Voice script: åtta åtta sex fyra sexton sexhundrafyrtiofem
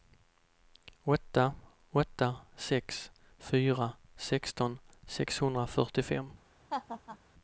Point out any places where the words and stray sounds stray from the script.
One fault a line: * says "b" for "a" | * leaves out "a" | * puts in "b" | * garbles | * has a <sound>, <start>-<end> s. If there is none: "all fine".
* has a laugh, 6.7-7.2 s